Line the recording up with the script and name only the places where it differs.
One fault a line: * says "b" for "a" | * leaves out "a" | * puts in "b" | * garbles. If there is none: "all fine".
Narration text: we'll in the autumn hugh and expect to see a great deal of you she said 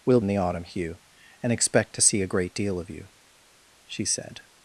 all fine